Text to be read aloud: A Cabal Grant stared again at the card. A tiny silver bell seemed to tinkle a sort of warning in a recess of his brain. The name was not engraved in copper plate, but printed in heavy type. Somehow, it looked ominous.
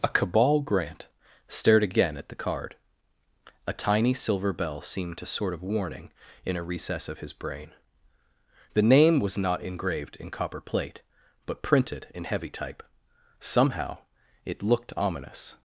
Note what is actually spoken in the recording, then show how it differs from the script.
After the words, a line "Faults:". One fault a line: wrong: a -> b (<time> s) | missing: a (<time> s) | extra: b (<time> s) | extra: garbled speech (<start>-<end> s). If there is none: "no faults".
A Cabal Grant stared again at the card. A tiny silver bell seemed to sort of warning in a recess of his brain. The name was not engraved in copper plate, but printed in heavy type. Somehow, it looked ominous.
Faults:
missing: tinkle a (5.3 s)